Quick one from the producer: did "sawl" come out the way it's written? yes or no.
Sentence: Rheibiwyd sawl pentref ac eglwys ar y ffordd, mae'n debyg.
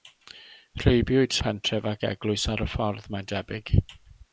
no